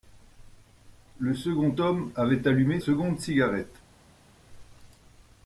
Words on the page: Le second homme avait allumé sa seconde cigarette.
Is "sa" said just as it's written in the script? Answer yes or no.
no